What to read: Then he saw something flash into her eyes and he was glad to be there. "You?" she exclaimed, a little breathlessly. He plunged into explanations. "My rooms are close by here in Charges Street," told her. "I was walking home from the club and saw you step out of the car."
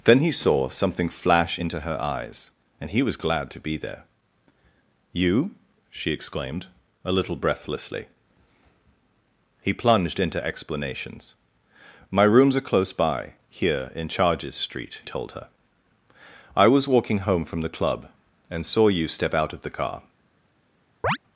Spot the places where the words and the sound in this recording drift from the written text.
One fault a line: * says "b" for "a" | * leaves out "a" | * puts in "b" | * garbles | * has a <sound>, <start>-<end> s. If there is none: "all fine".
* has a chirp, 21.0-21.2 s